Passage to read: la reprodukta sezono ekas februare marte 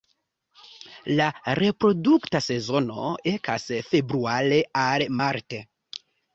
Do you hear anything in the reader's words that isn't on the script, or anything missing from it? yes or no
yes